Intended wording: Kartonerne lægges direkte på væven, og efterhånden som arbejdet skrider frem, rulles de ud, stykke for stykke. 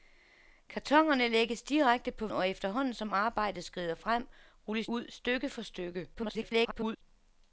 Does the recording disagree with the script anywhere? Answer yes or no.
yes